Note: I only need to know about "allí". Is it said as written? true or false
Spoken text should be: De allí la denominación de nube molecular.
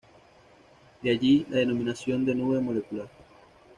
true